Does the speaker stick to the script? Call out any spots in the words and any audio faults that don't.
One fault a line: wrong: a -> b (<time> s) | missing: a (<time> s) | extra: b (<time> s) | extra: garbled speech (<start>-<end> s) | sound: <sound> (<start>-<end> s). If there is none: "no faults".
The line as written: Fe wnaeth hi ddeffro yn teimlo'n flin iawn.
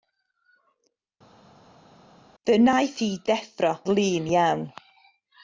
missing: yn teimlo'n (3.7 s)